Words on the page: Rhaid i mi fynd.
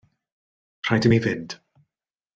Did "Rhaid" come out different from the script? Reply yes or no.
no